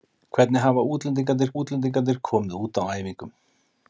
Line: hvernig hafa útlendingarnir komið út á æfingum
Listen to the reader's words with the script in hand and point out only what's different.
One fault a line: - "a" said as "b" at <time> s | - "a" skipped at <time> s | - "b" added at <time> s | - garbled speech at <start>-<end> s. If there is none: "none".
- "útlendingarnir" added at 1.6 s